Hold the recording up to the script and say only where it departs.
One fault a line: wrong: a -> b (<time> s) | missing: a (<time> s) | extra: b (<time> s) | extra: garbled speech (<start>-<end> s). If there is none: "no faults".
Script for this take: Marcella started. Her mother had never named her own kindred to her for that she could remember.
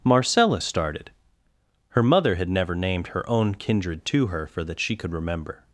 no faults